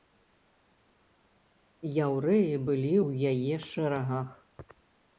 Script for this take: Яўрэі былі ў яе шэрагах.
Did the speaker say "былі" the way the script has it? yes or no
yes